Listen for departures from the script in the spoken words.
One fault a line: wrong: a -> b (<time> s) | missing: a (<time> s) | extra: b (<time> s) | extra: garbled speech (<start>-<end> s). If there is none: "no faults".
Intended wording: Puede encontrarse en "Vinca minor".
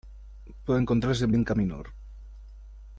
no faults